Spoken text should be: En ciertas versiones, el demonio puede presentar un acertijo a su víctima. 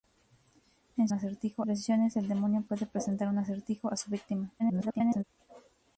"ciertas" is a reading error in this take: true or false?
true